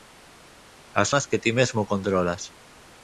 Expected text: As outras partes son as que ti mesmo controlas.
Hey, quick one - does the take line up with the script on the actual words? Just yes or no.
no